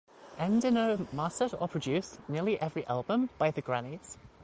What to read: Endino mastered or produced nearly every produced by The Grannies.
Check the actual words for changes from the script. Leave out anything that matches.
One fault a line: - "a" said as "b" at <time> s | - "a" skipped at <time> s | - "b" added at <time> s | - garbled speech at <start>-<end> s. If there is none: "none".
- "produced" said as "album" at 2.9 s